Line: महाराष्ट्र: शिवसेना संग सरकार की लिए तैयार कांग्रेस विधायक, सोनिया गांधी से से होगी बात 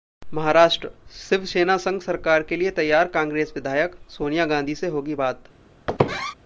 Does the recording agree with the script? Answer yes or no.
no